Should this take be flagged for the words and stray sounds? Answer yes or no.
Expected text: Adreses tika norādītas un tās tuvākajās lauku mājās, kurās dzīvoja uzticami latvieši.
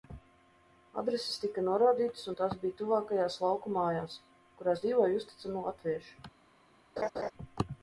yes